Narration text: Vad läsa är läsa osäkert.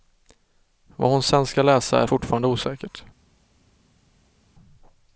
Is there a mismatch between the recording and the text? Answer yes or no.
yes